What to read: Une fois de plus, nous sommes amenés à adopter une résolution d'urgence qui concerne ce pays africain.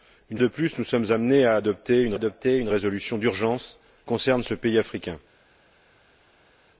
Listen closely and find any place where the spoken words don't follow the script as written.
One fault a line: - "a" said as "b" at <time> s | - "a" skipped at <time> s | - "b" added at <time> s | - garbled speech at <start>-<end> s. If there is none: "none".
- "fois" skipped at 0.4 s
- "adopter une" added at 2.1 s
- "qui" skipped at 3.8 s